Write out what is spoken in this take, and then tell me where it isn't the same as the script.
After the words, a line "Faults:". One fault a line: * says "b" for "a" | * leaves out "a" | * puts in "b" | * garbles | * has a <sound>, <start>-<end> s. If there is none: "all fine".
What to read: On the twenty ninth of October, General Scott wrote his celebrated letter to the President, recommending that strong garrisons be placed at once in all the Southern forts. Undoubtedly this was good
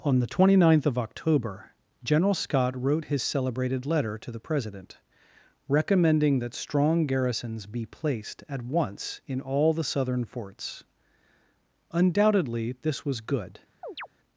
On the twenty ninth of October, General Scott wrote his celebrated letter to the President, recommending that strong garrisons be placed at once in all the Southern forts. Undoubtedly this was good
Faults:
* has a chirp, 13.8-14.1 s